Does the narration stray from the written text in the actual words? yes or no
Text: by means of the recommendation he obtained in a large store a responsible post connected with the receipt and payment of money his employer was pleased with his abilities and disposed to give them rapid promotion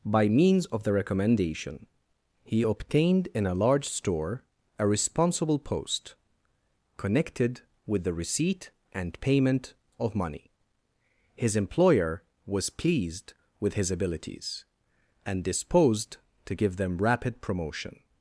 no